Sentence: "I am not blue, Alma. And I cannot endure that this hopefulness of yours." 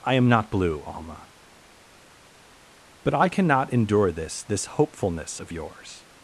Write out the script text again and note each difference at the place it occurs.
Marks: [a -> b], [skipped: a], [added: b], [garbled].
"I am not blue, Alma. [And -> But] I cannot endure [that -> this] this hopefulness of yours."